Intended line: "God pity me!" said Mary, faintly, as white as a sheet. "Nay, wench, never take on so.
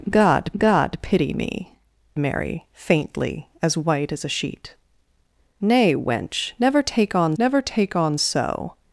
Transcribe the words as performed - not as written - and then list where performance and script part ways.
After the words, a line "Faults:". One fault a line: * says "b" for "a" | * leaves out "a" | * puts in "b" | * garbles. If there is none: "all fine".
"God god pity me!" Mary, faintly, as white as a sheet. "Nay, wench, never take on never take on so.
Faults:
* puts in "god"
* leaves out "said"
* puts in "never take on"